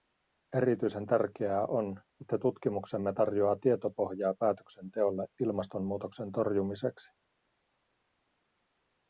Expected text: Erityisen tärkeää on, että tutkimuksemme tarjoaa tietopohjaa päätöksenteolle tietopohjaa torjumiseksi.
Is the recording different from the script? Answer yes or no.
yes